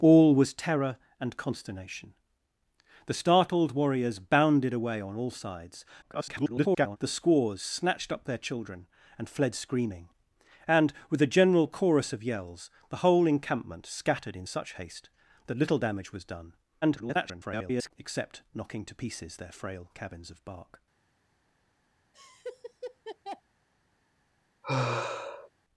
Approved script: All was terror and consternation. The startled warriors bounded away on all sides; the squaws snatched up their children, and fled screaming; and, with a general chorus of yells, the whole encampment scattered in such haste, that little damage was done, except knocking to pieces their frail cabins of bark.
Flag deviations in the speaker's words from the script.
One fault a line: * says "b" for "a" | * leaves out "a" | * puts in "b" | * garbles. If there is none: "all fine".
* garbles
* garbles